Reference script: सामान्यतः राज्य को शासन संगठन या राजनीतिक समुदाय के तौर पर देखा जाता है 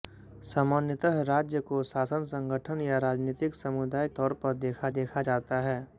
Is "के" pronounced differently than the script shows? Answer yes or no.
yes